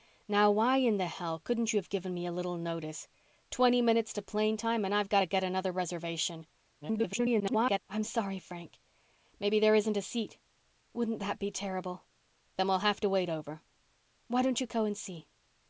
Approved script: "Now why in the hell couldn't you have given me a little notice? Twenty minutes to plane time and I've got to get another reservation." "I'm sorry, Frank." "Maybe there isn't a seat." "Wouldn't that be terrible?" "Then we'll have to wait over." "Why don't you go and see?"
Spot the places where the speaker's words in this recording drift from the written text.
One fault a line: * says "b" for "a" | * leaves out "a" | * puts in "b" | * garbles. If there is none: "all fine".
* garbles